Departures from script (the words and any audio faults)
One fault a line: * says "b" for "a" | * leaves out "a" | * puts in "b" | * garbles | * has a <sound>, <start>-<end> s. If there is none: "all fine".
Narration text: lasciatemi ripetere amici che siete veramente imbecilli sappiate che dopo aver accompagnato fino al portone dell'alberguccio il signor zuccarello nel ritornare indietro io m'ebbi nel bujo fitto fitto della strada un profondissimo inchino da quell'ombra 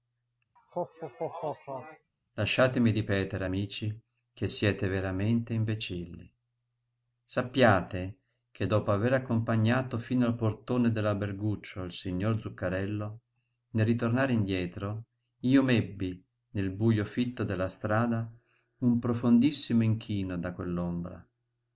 * has a laugh, 0.6-2.1 s
* leaves out "fitto"